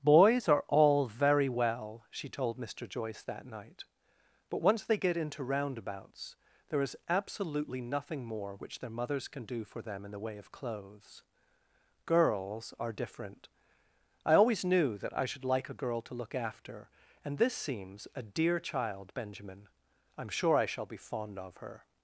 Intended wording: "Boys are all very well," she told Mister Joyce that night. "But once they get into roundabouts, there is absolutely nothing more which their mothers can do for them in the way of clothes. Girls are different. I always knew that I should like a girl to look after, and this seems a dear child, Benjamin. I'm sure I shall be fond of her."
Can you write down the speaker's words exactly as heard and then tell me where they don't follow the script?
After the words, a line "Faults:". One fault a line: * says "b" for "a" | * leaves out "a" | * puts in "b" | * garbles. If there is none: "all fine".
"Boys are all very well," she told Mister Joyce that night. "But once they get into roundabouts, there is absolutely nothing more which their mothers can do for them in the way of clothes. Girls are different. I always knew that I should like a girl to look after, and this seems a dear child, Benjamin. I'm sure I shall be fond of her."
Faults:
all fine